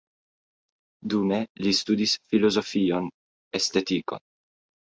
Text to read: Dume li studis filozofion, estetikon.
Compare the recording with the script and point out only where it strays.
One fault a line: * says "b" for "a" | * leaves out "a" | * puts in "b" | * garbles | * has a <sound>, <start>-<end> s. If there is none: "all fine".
all fine